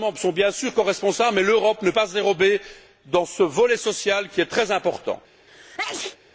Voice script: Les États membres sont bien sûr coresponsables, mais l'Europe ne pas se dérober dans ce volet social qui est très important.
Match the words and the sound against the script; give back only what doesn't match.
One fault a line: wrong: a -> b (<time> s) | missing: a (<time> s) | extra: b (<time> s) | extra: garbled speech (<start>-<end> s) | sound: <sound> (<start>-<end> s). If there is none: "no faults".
sound: sneeze (5.5-6.2 s)